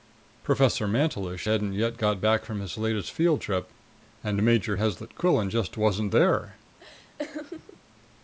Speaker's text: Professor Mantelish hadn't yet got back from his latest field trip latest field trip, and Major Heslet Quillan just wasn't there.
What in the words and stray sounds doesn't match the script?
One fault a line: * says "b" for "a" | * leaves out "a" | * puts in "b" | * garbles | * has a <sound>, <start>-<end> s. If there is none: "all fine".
* leaves out "latest field trip"
* has a laugh, 6.8-7.8 s